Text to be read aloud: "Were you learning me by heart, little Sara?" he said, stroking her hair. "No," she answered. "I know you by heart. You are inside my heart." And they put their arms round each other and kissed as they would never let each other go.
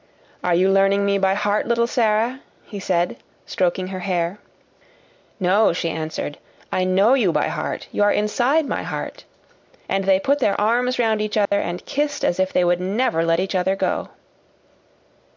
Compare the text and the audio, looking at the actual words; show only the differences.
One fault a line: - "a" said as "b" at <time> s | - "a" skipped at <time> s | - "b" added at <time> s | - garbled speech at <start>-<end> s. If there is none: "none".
- "Were" said as "Are" at 0.4 s
- "if" added at 12.4 s